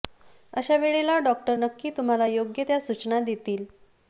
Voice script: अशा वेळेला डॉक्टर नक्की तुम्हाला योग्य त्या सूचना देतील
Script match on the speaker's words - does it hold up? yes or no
yes